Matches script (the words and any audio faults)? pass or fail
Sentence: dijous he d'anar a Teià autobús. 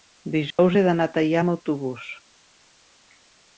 fail